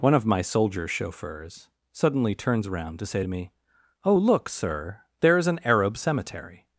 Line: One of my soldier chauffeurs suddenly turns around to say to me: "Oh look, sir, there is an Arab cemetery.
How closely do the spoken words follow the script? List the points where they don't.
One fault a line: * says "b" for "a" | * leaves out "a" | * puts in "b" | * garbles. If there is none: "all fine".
all fine